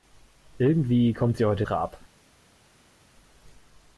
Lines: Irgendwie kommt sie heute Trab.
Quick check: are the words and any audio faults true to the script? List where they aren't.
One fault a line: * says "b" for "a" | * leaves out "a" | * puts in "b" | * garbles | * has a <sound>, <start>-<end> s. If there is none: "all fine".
all fine